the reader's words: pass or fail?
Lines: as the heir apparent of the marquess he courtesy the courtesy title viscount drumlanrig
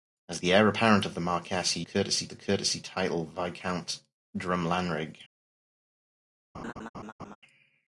pass